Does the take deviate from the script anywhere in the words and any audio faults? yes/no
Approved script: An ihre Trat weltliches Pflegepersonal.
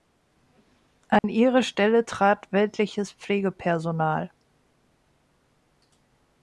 yes